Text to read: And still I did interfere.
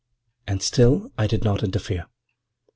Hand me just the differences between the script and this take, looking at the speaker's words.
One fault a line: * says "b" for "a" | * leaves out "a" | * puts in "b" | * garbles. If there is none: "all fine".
* puts in "not"